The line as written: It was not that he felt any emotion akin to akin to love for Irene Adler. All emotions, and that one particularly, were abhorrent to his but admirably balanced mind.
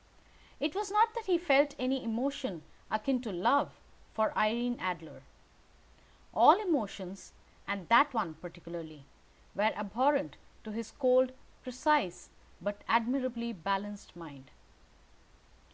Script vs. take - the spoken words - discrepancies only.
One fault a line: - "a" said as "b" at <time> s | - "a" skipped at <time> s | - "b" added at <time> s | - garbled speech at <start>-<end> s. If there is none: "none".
- "akin to" skipped at 3.3 s
- "cold precise" added at 10.9 s